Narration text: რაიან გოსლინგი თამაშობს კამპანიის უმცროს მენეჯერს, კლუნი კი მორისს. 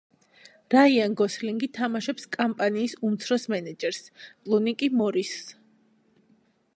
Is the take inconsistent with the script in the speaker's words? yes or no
no